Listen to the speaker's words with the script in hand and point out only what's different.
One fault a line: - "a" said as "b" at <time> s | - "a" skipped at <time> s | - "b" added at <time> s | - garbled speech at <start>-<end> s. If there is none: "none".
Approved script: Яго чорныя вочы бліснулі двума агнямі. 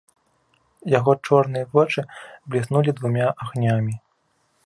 none